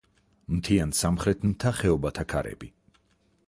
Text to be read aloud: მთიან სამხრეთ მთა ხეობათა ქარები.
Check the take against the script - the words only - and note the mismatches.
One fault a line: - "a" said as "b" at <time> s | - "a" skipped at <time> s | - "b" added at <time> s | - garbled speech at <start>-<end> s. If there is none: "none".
none